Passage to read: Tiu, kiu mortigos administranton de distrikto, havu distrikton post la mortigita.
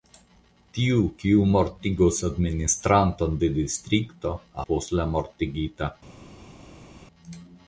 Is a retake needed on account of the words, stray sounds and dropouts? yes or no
yes